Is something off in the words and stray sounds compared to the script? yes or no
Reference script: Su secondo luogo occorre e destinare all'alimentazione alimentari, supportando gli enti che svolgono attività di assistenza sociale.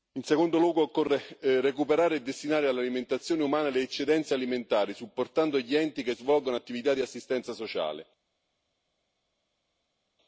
yes